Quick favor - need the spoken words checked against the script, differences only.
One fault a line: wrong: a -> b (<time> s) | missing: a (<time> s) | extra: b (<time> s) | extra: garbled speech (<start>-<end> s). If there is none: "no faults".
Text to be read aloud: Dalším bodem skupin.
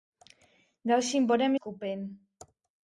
no faults